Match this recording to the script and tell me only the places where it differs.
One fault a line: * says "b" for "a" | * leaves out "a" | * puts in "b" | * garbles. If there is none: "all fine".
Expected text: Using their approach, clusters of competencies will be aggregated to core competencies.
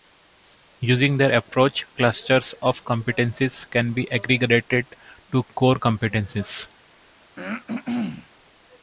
* says "can" for "will"